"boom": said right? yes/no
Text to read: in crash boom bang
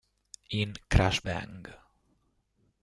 no